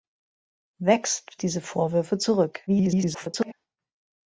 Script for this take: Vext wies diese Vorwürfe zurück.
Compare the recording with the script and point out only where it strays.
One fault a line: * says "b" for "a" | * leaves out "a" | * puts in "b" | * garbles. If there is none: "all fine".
* leaves out "wies"
* garbles